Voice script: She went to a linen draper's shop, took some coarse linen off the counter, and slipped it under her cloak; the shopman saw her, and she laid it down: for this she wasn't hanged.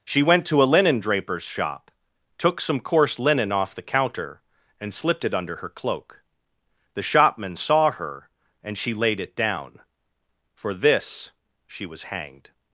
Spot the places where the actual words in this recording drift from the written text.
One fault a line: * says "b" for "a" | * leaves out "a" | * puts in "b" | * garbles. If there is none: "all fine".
* says "was" for "wasn't"